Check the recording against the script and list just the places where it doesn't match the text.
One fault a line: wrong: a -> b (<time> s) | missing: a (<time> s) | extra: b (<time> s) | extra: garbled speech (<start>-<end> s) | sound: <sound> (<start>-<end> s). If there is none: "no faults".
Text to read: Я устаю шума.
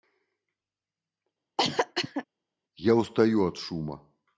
sound: cough (1.6-2.2 s)
extra: от (3.4 s)